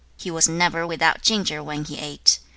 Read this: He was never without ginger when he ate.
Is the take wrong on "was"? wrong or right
right